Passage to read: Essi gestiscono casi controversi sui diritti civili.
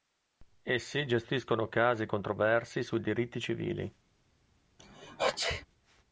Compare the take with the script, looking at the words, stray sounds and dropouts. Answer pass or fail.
fail